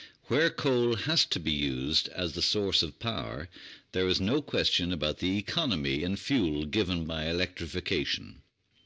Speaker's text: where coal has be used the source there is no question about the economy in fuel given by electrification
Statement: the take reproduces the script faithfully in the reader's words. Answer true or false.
false